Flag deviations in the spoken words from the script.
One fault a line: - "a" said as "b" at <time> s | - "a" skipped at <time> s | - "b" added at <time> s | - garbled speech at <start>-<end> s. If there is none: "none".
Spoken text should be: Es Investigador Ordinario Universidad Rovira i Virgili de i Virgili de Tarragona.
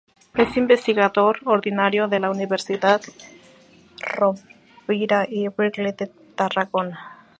- "de la" added at 2.1 s
- "i Virgili de" skipped at 6.1 s